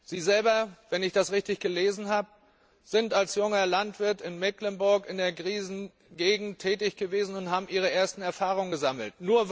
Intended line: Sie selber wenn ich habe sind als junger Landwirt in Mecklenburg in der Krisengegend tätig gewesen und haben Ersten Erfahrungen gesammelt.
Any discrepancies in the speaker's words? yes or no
yes